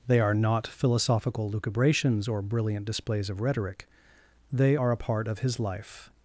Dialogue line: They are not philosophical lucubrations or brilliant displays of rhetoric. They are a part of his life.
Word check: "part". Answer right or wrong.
right